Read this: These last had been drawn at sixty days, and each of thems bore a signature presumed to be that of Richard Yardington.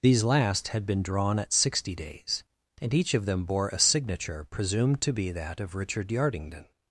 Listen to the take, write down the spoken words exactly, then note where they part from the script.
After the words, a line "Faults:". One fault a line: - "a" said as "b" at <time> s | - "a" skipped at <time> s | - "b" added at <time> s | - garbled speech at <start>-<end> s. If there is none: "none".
These last had been drawn at sixty days, and each of them bore a signature presumed to be that of Richard Yardington.
Faults:
- "thems" said as "them" at 3.3 s